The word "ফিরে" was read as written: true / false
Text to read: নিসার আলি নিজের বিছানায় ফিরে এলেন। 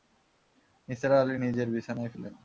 false